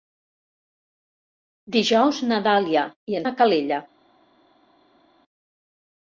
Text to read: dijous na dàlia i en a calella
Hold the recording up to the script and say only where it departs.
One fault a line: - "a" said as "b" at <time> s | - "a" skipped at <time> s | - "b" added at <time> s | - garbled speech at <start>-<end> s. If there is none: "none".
none